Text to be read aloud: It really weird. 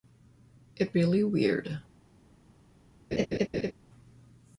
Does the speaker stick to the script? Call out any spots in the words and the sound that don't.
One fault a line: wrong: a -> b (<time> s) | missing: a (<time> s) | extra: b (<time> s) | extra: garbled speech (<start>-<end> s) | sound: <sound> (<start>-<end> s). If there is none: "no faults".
sound: laugh (3.1-3.7 s)